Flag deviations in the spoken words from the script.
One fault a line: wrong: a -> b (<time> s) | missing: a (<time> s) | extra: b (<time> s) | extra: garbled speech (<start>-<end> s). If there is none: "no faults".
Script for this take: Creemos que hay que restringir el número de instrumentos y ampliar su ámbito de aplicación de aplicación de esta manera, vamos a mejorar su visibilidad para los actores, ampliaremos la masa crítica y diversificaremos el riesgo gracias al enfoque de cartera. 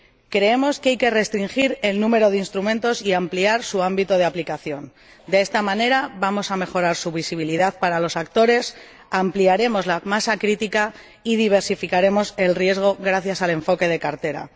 missing: aplicación de (5.4 s)